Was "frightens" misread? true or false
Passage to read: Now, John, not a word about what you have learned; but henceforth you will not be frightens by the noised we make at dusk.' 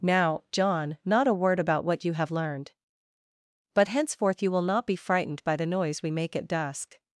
true